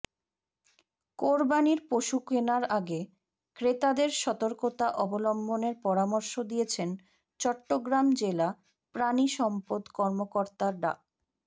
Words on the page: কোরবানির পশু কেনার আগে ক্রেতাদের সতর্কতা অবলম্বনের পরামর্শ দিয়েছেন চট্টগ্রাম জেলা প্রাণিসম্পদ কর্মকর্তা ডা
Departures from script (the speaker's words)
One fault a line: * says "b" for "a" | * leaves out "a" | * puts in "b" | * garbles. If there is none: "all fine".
all fine